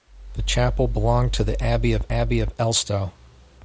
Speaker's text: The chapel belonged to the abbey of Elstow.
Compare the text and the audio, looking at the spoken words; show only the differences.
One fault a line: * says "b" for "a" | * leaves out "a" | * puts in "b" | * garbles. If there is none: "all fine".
* puts in "abbey of"